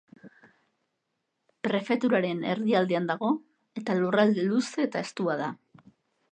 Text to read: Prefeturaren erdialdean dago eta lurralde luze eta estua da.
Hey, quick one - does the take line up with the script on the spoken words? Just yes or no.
yes